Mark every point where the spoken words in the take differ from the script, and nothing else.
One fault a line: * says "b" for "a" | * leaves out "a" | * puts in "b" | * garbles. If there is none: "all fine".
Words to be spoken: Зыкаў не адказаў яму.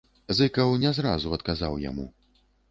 * puts in "зразу"